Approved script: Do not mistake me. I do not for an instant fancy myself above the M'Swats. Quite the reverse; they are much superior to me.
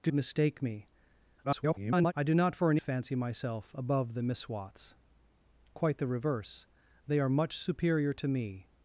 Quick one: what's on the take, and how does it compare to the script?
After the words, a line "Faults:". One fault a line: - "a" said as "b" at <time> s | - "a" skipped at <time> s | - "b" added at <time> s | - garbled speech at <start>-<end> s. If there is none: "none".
Do mistake me. [garbled] I do not for an fancy myself above the M'Swats. Quite the reverse; they are much superior to me.
Faults:
- "not" skipped at 0.1 s
- garbled speech at 1.4-2.1 s
- "instant" skipped at 2.8 s